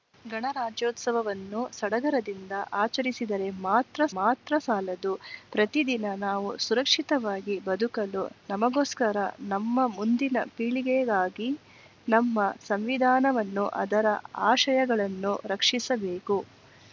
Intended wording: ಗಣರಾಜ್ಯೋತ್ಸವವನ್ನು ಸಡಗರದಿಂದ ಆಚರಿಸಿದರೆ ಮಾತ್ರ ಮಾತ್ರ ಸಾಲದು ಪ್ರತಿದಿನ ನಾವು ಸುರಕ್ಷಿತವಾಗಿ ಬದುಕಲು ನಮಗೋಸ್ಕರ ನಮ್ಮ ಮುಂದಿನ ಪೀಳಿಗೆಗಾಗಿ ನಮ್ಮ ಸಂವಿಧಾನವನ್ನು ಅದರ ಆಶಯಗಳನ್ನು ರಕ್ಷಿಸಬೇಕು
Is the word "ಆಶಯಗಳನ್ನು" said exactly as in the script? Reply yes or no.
yes